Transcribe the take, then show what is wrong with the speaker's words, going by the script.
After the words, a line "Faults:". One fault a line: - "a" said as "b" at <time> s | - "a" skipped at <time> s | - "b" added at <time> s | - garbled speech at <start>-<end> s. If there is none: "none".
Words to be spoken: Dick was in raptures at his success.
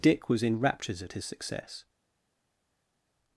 Dick was in raptures at his success.
Faults:
none